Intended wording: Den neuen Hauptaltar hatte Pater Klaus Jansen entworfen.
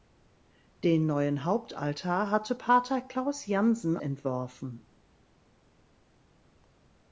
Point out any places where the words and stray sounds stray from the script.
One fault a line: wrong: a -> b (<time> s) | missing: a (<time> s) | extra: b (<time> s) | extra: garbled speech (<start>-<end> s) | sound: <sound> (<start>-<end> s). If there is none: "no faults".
no faults